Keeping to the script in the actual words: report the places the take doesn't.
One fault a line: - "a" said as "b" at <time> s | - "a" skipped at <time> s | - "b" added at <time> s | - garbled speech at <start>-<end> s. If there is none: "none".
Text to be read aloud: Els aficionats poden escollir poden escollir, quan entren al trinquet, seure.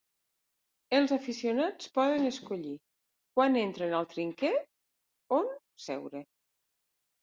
- "poden escollir" skipped at 2.8 s
- "on" added at 5.4 s